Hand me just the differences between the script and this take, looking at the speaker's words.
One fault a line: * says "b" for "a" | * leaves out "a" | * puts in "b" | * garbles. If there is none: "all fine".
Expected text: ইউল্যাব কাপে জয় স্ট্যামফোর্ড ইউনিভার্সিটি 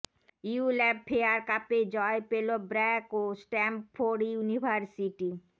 * puts in "ফেয়ার"
* puts in "পেল ব্র্যাক ও"